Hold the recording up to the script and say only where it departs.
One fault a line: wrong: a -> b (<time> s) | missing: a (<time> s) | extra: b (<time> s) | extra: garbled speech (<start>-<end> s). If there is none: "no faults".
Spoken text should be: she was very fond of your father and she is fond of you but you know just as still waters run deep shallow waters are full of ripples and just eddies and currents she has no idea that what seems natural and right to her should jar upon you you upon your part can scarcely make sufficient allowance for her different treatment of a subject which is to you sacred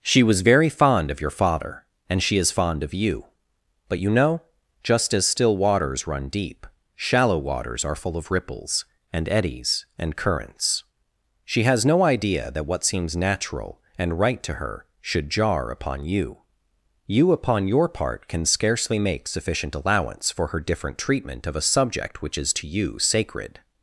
missing: just (9.3 s)